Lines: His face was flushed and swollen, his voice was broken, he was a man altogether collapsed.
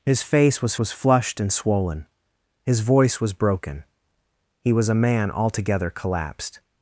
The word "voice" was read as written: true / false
true